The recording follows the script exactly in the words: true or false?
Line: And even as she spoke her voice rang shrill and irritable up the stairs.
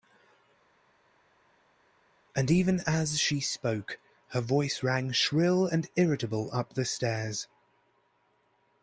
true